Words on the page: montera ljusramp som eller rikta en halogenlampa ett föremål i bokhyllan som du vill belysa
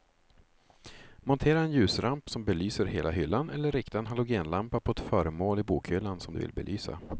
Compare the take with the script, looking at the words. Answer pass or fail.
fail